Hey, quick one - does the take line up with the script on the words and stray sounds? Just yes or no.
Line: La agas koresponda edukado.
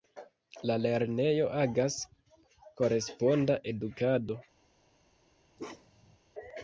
no